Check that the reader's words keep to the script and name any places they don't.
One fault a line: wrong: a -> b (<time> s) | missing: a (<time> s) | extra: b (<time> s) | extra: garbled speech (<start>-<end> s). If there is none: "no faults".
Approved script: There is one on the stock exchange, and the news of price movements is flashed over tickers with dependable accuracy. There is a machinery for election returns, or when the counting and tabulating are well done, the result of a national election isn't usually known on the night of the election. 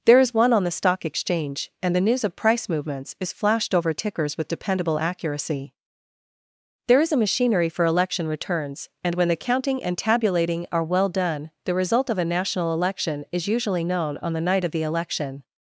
wrong: or -> and (9.0 s)
wrong: isn't -> is (13.3 s)